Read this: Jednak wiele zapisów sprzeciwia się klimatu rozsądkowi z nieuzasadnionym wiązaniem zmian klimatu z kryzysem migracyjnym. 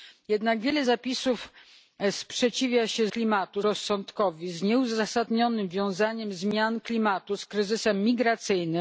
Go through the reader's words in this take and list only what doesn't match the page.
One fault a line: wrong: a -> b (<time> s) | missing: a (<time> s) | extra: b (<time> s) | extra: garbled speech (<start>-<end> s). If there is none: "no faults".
no faults